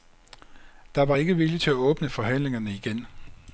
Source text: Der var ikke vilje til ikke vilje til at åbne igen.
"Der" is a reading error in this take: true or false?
false